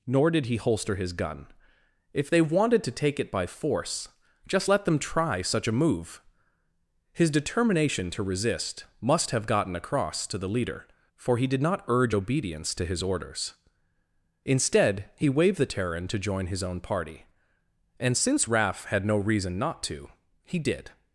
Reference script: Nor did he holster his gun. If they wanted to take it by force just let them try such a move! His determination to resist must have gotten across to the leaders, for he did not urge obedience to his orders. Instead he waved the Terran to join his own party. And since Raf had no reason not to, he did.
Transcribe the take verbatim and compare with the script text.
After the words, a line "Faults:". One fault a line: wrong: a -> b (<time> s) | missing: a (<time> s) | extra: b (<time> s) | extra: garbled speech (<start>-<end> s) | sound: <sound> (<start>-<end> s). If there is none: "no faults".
Nor did he holster his gun. If they wanted to take it by force just let them try such a move! His determination to resist must have gotten across to the leader, for he did not urge obedience to his orders. Instead he waved the Terran to join his own party. And since Raf had no reason not to, he did.
Faults:
wrong: leaders -> leader (10.5 s)